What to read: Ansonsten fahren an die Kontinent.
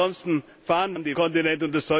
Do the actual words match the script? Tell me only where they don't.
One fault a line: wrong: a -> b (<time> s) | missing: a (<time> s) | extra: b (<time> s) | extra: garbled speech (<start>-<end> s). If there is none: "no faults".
no faults